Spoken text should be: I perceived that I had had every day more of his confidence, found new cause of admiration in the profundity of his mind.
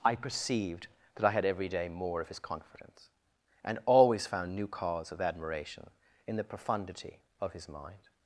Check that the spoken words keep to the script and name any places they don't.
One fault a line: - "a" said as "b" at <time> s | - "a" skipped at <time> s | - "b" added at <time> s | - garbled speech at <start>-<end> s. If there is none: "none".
- "had" skipped at 1.4 s
- "and always" added at 3.6 s